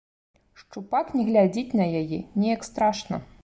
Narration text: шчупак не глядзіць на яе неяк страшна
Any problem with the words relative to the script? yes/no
no